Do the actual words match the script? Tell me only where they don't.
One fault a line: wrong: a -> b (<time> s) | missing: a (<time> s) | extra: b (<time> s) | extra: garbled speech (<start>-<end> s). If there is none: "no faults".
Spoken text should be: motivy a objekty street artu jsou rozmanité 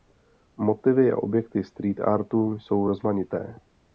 no faults